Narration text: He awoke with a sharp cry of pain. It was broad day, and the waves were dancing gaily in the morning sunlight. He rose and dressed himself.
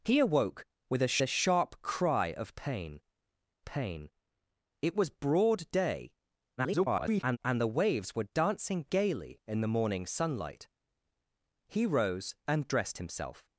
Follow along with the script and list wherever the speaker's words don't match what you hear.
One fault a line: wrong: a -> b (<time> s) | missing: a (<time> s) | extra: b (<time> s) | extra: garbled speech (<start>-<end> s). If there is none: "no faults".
extra: a (1.2 s)
extra: pain (3.6 s)
extra: garbled speech (6.6-7.4 s)